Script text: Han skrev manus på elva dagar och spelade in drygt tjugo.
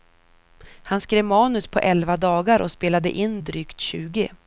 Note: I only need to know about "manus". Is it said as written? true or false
true